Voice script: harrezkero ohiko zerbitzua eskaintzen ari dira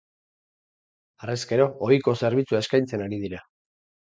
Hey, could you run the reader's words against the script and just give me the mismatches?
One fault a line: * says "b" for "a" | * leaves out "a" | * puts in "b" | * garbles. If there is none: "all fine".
all fine